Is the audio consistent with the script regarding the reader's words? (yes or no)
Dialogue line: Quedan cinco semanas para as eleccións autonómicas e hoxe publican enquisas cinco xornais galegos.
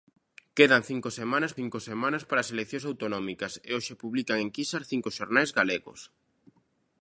no